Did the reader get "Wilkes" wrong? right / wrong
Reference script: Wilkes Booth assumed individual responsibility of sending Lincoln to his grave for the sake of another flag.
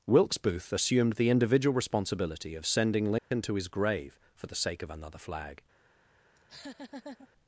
right